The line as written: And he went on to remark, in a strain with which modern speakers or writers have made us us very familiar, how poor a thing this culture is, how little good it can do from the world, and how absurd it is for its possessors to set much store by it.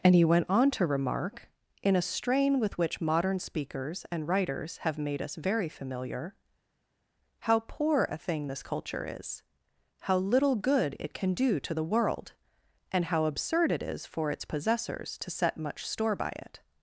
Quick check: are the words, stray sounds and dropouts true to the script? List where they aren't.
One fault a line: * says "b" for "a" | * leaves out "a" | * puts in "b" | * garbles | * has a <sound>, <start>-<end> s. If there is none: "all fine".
* says "and" for "or"
* leaves out "us"
* says "to" for "from"